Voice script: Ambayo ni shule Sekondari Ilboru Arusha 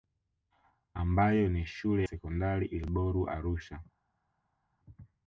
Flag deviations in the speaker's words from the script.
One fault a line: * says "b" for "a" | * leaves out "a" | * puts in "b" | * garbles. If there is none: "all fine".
all fine